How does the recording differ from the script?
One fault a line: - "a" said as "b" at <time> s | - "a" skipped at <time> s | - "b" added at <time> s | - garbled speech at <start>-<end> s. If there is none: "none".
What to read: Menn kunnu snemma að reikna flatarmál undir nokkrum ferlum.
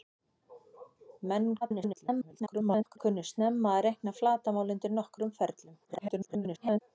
- garbled speech at 1.6-3.0 s
- garbled speech at 5.8-6.8 s